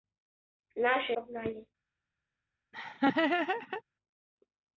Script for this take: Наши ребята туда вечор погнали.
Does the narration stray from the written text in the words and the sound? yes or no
yes